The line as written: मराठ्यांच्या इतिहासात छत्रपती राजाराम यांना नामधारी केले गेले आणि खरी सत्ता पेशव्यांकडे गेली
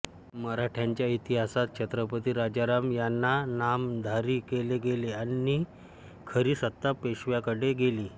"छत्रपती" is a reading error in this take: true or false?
false